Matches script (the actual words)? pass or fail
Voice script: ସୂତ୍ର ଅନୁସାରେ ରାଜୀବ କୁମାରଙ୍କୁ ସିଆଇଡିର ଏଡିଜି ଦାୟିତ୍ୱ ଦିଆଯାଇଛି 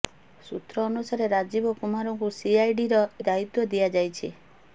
fail